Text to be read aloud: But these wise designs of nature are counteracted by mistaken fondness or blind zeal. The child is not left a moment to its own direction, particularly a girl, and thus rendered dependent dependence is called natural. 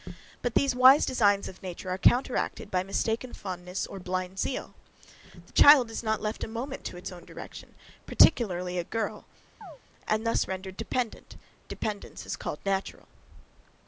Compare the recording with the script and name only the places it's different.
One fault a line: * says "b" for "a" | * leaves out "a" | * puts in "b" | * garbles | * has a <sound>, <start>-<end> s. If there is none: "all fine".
* has a chirp, 9.6-9.8 s